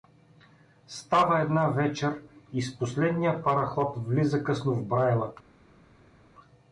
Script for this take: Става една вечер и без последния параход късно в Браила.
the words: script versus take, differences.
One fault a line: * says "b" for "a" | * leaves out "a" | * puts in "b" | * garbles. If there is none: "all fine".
* says "с" for "без"
* puts in "влиза"